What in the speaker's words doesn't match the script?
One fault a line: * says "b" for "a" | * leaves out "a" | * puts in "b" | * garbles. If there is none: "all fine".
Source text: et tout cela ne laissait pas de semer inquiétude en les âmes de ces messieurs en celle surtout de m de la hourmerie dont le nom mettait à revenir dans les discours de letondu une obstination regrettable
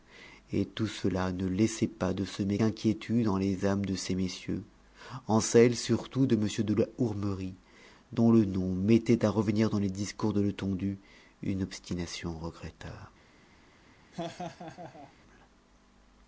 all fine